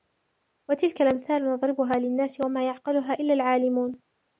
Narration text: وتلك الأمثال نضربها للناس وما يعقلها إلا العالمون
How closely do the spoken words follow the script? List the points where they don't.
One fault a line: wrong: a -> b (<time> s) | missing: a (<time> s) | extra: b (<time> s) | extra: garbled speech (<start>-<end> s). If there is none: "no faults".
no faults